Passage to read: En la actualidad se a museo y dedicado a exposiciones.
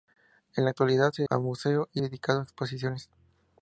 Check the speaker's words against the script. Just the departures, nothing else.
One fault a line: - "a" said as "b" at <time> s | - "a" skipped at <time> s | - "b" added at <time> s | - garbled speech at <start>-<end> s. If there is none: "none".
none